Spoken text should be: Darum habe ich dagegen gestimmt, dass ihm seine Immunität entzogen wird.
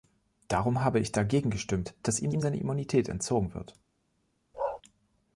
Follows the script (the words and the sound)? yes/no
no